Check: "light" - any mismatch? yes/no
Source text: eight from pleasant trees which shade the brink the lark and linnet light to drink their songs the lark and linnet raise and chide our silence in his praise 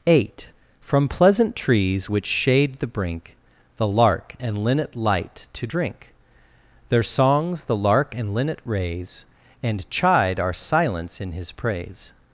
no